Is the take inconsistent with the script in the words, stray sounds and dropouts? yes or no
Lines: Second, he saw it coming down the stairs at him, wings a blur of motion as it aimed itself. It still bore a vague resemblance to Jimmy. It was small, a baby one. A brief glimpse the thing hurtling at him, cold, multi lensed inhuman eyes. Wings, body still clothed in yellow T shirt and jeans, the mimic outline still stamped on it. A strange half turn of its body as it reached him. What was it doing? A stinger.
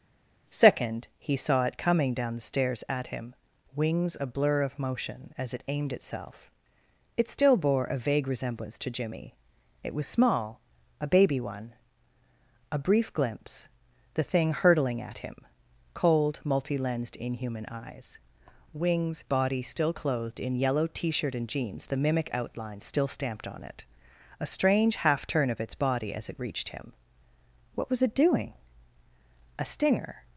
no